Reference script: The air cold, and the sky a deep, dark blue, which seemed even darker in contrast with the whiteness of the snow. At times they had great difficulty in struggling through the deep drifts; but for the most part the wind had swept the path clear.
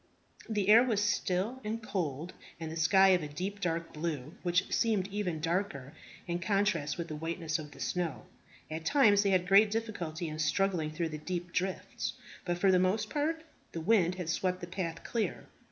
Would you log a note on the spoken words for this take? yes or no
yes